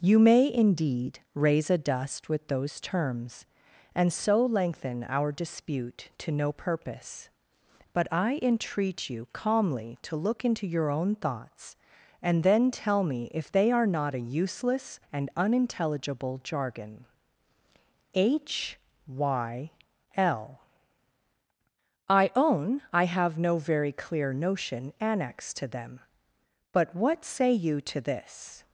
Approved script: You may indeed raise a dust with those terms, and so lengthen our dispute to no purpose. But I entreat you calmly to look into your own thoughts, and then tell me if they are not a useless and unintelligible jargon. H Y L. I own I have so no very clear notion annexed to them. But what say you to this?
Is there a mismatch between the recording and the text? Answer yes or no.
yes